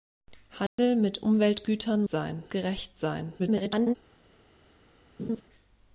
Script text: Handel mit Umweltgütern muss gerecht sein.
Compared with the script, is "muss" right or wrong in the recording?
wrong